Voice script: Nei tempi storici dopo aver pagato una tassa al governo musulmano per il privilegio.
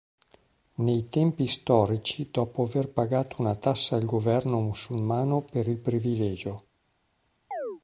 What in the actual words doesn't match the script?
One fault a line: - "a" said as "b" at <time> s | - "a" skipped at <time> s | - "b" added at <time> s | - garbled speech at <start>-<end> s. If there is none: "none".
none